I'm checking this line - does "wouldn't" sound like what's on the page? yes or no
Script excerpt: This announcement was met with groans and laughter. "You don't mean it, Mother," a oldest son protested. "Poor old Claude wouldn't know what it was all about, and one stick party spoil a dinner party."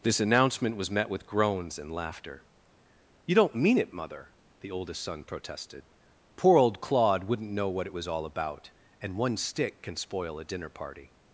yes